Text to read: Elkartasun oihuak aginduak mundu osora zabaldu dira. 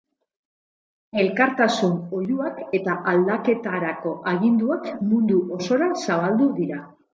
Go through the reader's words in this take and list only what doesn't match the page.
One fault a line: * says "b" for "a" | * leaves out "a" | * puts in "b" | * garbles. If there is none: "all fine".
* puts in "eta aldaketarako"